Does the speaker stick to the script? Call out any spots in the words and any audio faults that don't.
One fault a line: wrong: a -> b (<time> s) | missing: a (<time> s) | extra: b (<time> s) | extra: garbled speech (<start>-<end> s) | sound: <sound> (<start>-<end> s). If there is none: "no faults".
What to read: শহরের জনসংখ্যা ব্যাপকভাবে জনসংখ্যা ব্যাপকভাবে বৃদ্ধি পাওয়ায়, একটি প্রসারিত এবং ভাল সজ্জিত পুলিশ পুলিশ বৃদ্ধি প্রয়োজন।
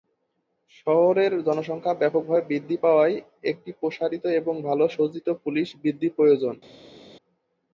missing: জনসংখ্যা ব্যাপকভাবে (2.4 s)
missing: পুলিশ (5.7 s)